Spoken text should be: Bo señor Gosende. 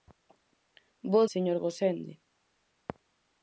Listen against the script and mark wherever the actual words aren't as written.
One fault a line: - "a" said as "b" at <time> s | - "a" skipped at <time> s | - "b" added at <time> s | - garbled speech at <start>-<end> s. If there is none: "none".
none